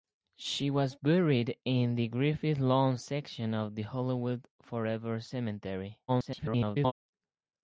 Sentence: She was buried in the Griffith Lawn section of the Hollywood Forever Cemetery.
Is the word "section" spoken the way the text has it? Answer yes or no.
yes